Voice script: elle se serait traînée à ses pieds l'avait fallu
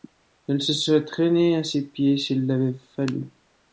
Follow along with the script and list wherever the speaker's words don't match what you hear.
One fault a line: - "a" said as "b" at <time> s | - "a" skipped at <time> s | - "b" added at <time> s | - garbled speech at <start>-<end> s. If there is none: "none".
- "s'il" added at 2.2 s